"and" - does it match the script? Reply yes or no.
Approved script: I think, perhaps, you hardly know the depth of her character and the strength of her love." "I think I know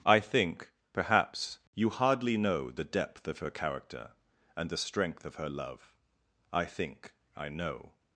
yes